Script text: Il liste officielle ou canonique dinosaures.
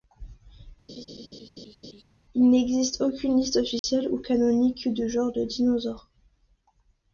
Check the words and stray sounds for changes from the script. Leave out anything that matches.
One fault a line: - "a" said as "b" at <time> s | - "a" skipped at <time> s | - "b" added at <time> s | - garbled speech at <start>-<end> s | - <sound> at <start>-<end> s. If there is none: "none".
- laugh at 0.9-2.0 s
- "n'existe aucune" added at 2.5 s
- dropout at 3.8-3.8 s
- "de genres de" added at 4.9 s